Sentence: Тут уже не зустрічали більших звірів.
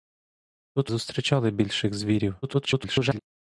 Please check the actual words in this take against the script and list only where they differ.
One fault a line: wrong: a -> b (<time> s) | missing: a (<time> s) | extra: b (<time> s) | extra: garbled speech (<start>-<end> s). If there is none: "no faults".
missing: уже не (0.9 s)
extra: garbled speech (2.4-3.2 s)